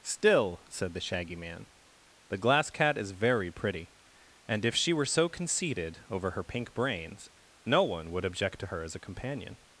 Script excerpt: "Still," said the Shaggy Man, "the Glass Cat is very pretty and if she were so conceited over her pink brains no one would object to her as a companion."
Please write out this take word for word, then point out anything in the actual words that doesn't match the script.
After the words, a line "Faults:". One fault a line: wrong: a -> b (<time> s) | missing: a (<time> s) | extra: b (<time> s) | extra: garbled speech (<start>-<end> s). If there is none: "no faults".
"Still," said the Shaggy Man, "the Glass Cat is very pretty and if she were so conceited over her pink brains no one would object to her as a companion."
Faults:
no faults